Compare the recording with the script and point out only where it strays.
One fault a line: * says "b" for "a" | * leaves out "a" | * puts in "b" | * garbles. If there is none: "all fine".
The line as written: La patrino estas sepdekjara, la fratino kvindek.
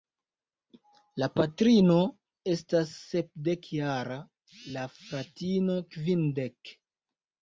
all fine